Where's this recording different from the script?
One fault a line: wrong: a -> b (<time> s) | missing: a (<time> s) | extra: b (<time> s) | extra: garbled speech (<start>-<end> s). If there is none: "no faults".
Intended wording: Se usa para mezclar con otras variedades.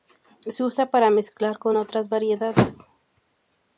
no faults